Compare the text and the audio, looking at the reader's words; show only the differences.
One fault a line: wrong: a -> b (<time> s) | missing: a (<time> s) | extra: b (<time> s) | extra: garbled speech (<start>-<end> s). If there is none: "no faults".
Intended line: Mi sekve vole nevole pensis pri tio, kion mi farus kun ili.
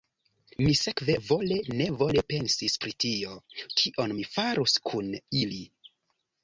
no faults